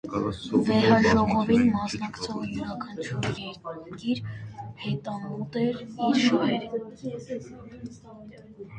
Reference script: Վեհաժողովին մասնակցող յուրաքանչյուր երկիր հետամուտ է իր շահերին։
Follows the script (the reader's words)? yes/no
no